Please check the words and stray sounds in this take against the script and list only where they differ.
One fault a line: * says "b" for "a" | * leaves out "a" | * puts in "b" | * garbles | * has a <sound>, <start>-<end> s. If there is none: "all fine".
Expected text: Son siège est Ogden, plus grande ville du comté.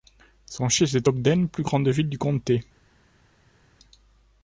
all fine